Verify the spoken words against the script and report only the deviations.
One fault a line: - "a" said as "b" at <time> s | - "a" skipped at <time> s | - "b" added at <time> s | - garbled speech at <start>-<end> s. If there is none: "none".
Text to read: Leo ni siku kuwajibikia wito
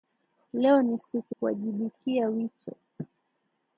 none